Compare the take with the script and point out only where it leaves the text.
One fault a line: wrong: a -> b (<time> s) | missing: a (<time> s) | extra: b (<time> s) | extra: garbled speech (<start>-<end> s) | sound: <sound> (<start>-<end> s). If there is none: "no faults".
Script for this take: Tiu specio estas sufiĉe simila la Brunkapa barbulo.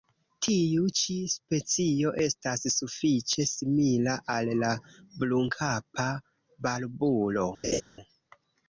extra: ĉi (1.0 s)
extra: al (4.4 s)
sound: laugh (7.6-7.8 s)